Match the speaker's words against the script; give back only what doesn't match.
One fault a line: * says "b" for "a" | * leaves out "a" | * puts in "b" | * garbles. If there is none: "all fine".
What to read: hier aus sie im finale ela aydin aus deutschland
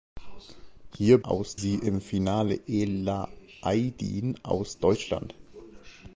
all fine